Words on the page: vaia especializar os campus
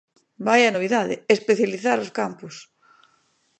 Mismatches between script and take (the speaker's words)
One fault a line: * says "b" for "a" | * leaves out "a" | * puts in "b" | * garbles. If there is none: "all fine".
* puts in "novidade"